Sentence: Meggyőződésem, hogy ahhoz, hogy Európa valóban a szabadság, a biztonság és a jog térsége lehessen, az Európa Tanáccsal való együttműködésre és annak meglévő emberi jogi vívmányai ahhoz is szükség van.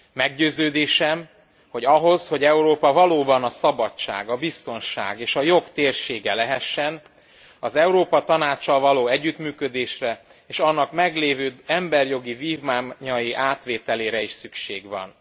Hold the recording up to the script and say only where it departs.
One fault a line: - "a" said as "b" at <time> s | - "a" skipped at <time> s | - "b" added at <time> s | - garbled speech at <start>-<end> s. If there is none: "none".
- "ahhoz" said as "átvételére" at 13.3 s